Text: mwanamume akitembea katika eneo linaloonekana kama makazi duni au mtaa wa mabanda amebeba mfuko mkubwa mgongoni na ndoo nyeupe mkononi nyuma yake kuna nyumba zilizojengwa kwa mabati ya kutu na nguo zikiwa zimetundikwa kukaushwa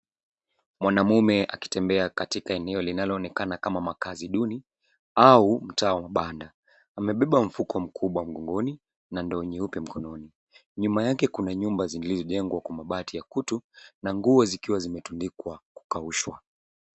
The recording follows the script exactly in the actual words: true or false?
true